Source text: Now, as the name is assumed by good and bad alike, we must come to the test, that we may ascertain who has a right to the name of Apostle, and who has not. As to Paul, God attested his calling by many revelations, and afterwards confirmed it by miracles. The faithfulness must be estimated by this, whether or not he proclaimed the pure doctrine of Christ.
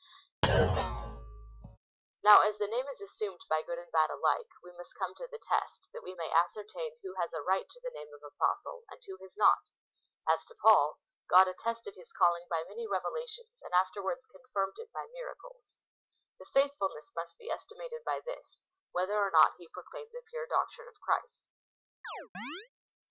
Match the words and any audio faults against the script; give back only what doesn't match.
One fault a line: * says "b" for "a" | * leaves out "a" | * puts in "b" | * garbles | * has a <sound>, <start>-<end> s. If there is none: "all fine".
* has a thud, 0.4-1.8 s
* has a chirp, 22.0-22.7 s